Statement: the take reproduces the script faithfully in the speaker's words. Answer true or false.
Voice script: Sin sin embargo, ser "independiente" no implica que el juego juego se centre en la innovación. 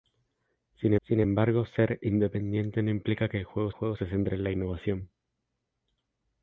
true